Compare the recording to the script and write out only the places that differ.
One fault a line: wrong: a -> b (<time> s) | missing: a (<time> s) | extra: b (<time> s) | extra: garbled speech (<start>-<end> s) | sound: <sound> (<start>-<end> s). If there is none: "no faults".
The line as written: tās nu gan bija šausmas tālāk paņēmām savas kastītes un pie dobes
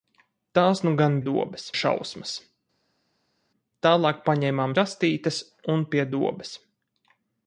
wrong: bija -> dobes (1.3 s)
missing: savas (4.7 s)